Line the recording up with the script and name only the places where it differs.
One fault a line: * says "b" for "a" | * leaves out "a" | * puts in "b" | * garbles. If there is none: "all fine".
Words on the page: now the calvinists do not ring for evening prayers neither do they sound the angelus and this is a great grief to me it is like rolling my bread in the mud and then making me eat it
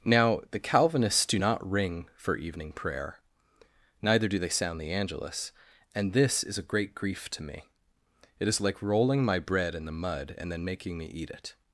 * says "prayer" for "prayers"